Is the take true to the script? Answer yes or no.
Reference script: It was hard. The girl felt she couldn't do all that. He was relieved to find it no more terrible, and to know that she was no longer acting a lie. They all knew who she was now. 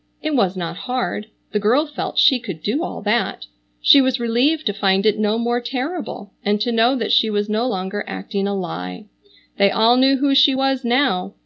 no